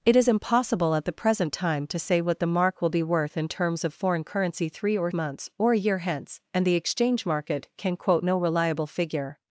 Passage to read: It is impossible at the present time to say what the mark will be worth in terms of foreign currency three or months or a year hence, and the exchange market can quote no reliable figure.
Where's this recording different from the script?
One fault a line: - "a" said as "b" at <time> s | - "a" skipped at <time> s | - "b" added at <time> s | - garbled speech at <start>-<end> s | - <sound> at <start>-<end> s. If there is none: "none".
none